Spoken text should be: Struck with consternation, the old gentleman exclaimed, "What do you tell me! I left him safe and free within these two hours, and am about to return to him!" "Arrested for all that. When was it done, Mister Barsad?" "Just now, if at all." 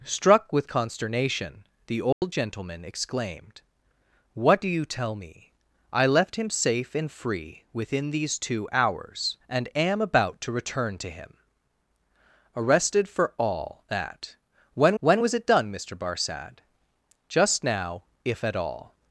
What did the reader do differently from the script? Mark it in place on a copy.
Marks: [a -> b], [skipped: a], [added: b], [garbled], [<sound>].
Struck with consternation, the old [dropout] gentleman exclaimed, "What do you tell me! I left him safe and free within these two hours, and am about to return to him!" "Arrested for all that. When [added: when] was it done, Mister Barsad?" "Just now, if at all."